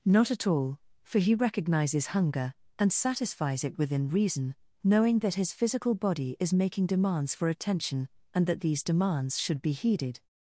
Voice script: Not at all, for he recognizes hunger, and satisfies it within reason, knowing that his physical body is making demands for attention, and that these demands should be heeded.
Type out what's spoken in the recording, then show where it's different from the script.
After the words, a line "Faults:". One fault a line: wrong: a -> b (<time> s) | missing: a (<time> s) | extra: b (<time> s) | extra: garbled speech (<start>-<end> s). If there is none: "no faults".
Not at all, for he recognizes hunger, and satisfies it within reason, knowing that his physical body is making demands for attention, and that these demands should be heeded.
Faults:
no faults